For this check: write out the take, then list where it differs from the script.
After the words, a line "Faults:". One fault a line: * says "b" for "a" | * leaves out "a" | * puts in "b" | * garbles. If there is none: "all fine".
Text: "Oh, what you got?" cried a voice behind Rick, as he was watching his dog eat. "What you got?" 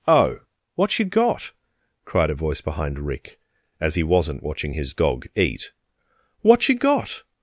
"Oh, what you got?" cried a voice behind Rick, as he wasn't watching his dog eat. "What you got?"
Faults:
* says "wasn't" for "was"